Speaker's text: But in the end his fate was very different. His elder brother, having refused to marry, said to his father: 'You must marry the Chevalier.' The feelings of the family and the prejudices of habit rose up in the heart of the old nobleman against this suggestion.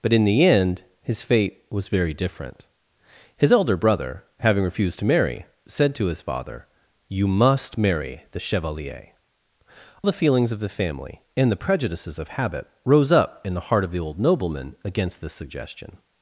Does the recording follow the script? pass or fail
pass